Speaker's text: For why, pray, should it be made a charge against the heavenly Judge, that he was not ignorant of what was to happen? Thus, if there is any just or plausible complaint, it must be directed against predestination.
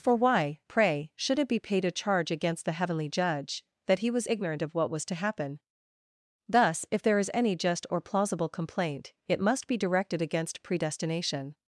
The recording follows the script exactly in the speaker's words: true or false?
false